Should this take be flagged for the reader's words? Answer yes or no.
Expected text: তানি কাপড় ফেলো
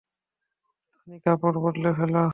yes